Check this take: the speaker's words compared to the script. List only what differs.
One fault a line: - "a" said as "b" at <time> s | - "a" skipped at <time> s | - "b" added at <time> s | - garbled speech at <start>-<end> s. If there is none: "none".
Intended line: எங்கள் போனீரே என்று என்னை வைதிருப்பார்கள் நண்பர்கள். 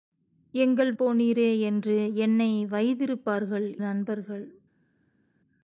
none